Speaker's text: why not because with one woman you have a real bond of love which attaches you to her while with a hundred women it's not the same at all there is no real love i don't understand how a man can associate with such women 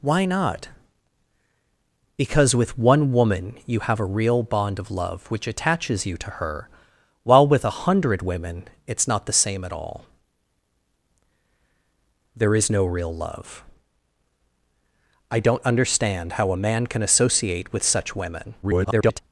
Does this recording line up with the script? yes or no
no